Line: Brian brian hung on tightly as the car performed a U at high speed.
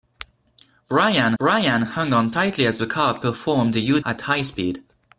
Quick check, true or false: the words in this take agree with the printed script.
true